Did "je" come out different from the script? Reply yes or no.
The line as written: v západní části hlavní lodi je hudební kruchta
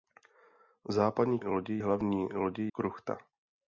yes